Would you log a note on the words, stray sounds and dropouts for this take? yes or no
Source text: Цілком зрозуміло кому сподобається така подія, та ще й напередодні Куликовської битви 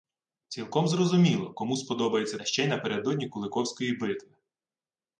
yes